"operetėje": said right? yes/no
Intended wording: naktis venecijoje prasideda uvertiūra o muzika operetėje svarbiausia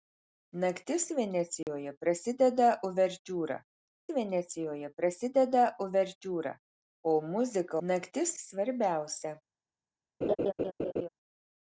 no